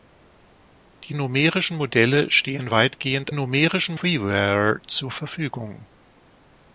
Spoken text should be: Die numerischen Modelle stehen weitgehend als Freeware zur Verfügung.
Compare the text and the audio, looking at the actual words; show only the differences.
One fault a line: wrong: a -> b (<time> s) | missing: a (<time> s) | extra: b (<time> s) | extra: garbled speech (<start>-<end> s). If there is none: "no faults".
wrong: als -> numerischen (3.3 s)